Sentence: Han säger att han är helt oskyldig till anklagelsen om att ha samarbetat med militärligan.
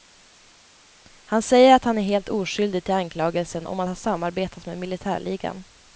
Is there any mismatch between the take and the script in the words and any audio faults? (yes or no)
no